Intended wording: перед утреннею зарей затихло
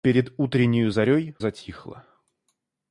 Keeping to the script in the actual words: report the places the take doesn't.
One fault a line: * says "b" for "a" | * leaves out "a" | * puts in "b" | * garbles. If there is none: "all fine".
all fine